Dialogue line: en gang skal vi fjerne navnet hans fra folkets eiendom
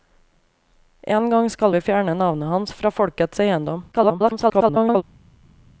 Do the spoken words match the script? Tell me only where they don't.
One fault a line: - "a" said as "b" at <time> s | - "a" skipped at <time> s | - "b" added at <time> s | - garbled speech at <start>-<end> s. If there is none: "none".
- garbled speech at 3.9-5.0 s